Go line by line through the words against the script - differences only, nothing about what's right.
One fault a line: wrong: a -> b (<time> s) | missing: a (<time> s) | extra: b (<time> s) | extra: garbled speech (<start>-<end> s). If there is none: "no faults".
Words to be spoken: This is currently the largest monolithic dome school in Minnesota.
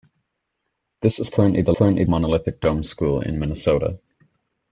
wrong: largest -> currently (1.7 s)